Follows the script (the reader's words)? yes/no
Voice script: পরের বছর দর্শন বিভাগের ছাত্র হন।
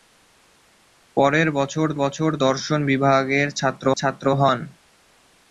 no